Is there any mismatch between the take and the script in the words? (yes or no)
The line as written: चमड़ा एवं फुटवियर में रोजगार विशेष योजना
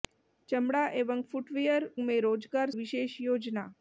no